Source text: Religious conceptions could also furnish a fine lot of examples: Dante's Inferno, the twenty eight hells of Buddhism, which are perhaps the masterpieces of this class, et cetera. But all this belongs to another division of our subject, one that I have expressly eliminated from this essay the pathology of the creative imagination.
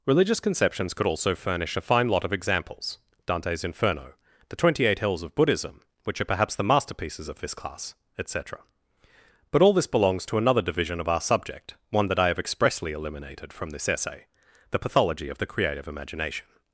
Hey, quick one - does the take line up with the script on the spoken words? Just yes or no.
yes